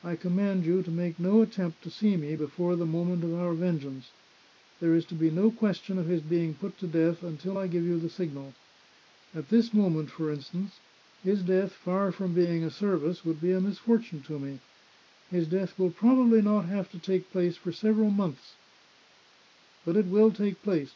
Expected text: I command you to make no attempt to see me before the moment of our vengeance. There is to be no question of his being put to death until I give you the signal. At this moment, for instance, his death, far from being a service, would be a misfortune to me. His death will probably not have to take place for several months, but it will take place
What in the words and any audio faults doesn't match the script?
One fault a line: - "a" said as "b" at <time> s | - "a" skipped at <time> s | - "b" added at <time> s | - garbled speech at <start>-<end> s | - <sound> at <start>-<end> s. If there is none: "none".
none